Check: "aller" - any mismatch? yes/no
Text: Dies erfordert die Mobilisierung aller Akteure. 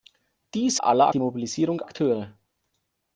yes